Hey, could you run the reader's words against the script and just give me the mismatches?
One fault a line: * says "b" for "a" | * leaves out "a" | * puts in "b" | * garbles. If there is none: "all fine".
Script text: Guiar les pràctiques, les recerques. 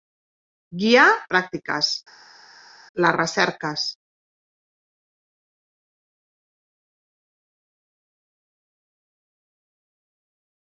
* leaves out "les"